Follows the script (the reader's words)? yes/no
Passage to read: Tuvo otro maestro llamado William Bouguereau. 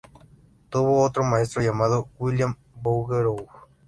yes